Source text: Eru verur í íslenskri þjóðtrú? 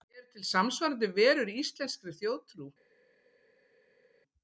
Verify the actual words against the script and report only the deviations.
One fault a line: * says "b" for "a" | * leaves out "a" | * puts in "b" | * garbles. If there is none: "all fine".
* puts in "til samsvarandi"